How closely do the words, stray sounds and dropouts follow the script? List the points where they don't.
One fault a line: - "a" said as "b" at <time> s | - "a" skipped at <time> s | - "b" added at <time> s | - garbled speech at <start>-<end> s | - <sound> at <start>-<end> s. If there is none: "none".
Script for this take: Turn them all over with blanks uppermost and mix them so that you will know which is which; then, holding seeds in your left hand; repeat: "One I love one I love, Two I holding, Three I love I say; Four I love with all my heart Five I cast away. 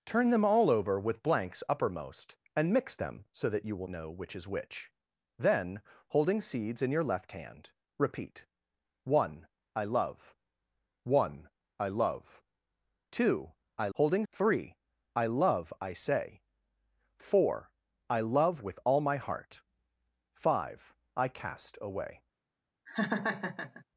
- laugh at 22.9-23.8 s